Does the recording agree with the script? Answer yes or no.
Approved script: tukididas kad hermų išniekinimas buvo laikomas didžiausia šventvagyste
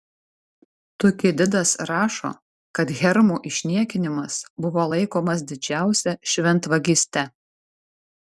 no